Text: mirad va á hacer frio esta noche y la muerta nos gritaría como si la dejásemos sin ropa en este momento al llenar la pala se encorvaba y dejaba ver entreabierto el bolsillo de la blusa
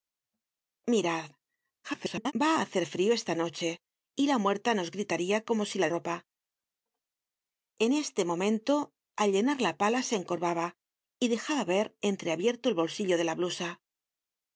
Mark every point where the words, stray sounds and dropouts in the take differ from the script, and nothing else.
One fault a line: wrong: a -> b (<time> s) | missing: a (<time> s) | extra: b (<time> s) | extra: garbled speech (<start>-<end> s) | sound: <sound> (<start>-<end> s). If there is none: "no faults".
extra: garbled speech (1.8-2.3 s)
missing: dejásemos sin (5.9 s)